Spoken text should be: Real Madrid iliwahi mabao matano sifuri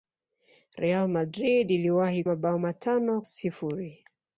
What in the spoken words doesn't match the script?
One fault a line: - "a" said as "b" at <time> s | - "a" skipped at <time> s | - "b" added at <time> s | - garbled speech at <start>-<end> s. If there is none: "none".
none